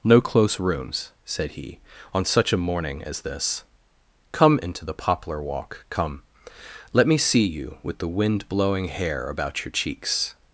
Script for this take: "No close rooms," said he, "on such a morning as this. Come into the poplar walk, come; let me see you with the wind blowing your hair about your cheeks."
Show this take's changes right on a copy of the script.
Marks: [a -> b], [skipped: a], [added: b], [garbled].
"No close rooms," said he, "on such a morning as this. Come into the poplar walk, come; let me see you with the wind blowing [skipped: your] hair about your cheeks."